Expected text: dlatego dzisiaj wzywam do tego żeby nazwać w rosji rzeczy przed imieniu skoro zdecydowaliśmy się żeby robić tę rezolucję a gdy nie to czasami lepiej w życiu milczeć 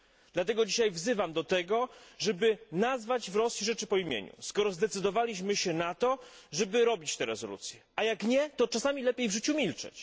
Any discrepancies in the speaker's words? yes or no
yes